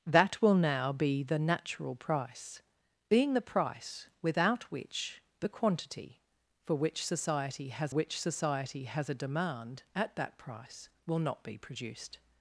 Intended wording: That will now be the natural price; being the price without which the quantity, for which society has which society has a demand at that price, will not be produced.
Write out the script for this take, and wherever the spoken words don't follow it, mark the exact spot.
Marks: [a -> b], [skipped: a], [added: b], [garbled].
That will now be the natural price; being the price without which the quantity, for which society has which society has a demand at that price, will not be produced.